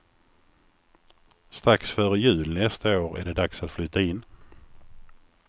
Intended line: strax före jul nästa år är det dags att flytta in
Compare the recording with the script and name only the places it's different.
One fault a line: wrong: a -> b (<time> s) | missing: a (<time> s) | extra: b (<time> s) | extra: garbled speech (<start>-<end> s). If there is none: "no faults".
no faults